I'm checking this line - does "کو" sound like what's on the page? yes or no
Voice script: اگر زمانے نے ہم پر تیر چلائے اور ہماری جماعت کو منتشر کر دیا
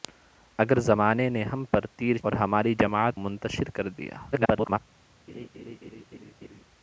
no